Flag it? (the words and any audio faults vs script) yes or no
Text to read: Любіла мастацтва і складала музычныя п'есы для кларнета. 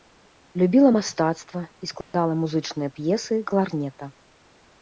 yes